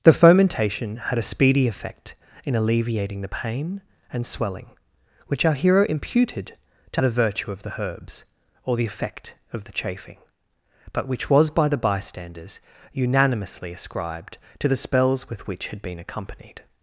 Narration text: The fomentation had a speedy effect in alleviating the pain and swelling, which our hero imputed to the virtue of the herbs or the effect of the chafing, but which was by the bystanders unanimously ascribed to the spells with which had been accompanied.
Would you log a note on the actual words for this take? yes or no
no